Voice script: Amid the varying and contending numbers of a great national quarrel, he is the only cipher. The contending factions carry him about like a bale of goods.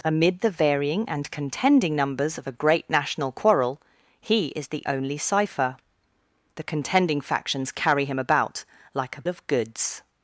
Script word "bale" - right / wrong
wrong